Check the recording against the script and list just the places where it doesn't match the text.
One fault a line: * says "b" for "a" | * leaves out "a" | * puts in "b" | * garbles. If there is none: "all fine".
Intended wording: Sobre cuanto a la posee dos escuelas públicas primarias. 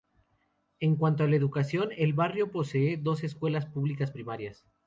* says "En" for "Sobre"
* puts in "educación el barrio"